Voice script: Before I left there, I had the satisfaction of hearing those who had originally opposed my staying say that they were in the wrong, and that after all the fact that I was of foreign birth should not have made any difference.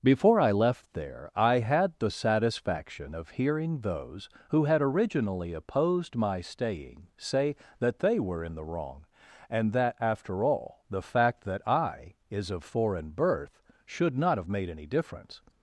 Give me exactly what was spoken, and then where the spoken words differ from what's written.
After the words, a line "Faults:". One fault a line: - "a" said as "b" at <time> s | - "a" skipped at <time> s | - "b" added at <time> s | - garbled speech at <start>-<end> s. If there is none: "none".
Before I left there, I had the satisfaction of hearing those who had originally opposed my staying say that they were in the wrong, and that after all the fact that I is of foreign birth should not have made any difference.
Faults:
- "was" said as "is" at 12.3 s